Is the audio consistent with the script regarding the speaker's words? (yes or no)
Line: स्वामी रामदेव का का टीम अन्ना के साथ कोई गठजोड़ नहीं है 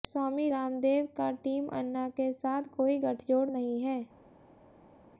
no